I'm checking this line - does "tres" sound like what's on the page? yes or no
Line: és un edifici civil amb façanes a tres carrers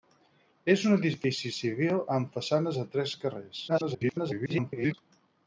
yes